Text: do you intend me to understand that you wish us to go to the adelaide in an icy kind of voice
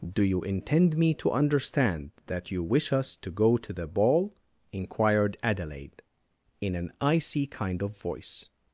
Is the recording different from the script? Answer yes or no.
yes